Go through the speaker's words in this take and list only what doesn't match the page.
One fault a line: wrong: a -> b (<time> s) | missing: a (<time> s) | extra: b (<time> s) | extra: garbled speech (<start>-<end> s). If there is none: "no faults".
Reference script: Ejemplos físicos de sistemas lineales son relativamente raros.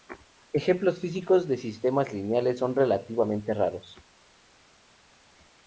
no faults